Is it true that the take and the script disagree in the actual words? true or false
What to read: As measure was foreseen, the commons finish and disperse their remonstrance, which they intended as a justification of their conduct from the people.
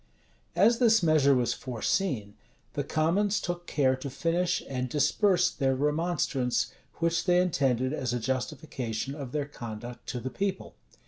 true